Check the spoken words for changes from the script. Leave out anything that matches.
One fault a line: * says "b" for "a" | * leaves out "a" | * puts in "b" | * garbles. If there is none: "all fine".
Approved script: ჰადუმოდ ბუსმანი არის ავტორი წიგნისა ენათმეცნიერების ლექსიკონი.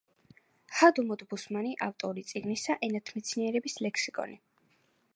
* leaves out "არის"